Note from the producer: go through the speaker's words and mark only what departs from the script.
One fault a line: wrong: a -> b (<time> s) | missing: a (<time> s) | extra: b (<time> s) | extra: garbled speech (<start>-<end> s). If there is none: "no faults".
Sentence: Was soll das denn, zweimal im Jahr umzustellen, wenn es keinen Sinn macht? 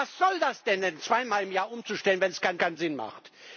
extra: keinen (2.6 s)